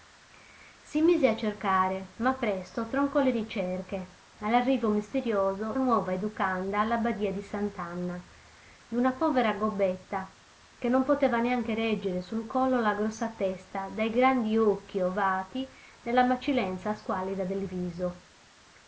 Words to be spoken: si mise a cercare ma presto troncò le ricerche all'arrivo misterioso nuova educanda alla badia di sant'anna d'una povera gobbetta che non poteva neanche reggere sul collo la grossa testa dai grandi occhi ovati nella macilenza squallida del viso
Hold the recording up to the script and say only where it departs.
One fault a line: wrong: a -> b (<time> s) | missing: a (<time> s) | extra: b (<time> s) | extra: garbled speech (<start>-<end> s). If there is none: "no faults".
no faults